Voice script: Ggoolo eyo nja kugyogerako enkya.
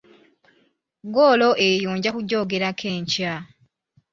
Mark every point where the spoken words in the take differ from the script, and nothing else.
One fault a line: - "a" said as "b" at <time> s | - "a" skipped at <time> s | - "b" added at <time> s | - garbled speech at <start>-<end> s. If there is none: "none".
none